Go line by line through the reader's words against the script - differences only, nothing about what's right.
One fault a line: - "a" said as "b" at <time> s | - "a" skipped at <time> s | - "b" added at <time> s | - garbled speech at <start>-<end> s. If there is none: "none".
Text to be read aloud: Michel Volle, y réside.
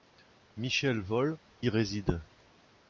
none